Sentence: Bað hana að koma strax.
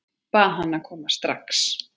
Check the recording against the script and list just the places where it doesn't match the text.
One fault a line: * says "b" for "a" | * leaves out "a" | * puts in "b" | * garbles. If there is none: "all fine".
all fine